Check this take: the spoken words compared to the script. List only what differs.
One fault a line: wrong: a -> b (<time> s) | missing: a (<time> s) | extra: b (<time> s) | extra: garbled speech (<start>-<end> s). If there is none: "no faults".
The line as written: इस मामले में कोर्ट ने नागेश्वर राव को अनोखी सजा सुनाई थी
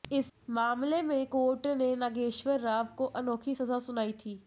no faults